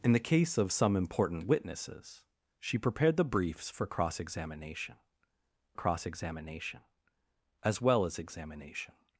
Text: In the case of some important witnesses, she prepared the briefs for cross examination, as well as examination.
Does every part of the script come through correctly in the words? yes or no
no